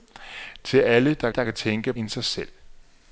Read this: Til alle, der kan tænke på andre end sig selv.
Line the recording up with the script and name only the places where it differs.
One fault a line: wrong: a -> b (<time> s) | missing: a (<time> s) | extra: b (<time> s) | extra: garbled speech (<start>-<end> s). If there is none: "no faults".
extra: der (1.3 s)
missing: på andre (1.9 s)